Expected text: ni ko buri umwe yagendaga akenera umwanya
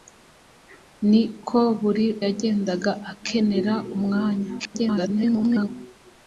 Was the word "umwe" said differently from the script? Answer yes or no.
yes